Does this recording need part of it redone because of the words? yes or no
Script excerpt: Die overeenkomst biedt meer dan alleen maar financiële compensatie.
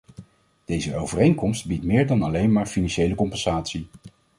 yes